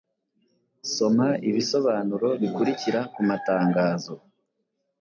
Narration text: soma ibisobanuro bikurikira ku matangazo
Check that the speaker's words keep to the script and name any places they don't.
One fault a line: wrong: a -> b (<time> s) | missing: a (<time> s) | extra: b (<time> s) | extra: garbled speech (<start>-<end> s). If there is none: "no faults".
no faults